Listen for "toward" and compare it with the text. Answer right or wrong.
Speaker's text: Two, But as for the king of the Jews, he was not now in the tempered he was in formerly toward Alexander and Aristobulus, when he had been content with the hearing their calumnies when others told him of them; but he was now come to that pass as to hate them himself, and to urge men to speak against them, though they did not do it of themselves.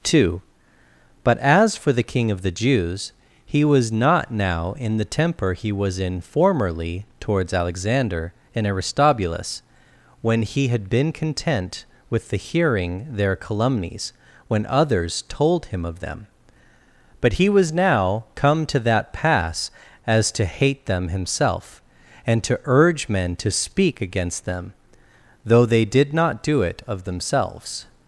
wrong